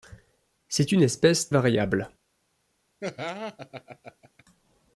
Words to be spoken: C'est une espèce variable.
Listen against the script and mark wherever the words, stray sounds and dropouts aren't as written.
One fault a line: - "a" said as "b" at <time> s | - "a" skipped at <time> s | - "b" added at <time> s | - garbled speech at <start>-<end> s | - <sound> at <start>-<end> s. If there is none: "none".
- laugh at 3.0-4.4 s